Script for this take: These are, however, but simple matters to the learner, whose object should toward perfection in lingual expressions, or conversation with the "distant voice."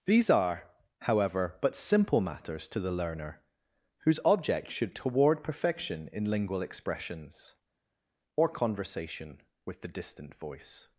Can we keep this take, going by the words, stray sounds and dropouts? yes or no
yes